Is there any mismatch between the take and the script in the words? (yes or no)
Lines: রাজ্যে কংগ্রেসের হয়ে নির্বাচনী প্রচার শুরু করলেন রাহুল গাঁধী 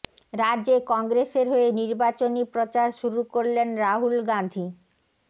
no